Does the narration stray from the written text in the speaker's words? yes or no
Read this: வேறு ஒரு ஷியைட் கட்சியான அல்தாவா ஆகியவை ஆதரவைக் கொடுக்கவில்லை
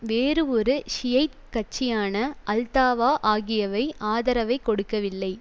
no